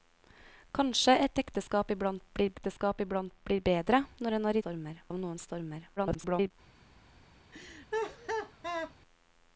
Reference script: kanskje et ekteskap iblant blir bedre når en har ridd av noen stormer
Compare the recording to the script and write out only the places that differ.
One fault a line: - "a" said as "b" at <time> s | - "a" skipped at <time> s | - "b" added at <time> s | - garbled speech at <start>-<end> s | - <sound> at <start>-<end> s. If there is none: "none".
- "ekteskap iblant blir" added at 2.5 s
- "ridd" said as "stormer" at 4.6 s
- garbled speech at 6.0-6.5 s
- laugh at 7.5-8.9 s